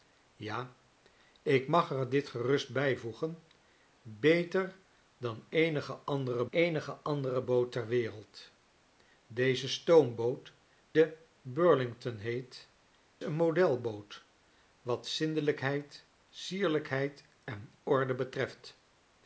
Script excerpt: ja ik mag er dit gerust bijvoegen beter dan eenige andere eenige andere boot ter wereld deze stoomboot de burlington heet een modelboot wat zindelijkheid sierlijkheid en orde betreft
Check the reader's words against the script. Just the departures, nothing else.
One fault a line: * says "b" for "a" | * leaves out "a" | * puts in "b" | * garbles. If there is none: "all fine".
all fine